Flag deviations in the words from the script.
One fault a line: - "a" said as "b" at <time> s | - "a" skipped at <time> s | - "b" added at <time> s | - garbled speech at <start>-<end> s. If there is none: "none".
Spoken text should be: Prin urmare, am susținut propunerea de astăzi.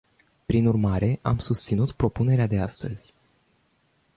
none